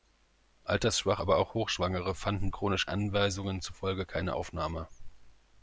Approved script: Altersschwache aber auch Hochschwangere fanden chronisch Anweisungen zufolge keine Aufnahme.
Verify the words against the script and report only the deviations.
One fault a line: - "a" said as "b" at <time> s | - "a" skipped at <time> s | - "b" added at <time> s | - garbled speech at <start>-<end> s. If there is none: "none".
none